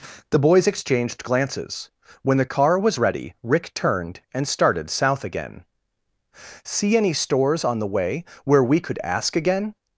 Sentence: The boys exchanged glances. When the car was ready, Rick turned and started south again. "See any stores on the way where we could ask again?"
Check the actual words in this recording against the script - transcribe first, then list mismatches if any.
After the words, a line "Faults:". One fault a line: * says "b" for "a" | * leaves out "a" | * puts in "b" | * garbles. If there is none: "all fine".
The boys exchanged glances. When the car was ready, Rick turned and started south again. "See any stores on the way where we could ask again?"
Faults:
all fine